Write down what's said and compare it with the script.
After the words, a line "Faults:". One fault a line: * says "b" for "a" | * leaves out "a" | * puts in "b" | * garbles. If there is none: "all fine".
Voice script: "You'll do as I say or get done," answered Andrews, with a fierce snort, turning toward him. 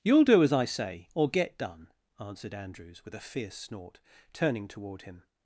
"You'll do as I say or get done," answered Andrews, with a fierce snort, turning toward him.
Faults:
all fine